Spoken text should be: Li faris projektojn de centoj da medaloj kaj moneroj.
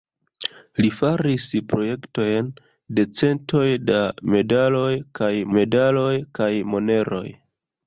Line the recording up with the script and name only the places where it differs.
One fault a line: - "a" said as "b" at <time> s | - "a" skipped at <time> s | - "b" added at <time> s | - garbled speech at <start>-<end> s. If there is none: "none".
- "medaloj kaj" added at 5.6 s